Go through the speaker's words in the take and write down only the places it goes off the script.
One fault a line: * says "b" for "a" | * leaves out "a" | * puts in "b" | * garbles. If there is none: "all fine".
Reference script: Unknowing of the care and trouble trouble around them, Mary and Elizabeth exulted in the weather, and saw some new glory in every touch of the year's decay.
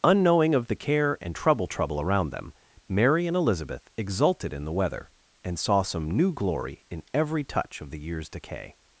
all fine